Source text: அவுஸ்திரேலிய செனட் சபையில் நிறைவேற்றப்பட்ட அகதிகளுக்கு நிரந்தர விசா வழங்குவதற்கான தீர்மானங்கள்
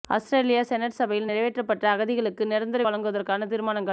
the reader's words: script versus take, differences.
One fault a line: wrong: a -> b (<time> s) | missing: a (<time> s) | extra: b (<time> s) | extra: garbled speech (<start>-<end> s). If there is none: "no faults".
missing: விசா (2.8 s)